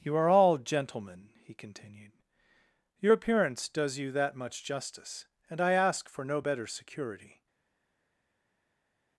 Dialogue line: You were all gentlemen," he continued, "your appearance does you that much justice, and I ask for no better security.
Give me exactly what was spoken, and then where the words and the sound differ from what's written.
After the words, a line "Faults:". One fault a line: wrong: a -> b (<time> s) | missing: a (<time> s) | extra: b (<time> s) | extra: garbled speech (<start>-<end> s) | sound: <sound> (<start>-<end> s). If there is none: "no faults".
You are all gentlemen," he continued, "your appearance does you that much justice, and I ask for no better security.
Faults:
wrong: were -> are (0.1 s)